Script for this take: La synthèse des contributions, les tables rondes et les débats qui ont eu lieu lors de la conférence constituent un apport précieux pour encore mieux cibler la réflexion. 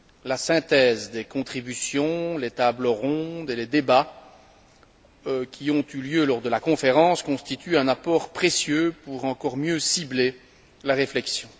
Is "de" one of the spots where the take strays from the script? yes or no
no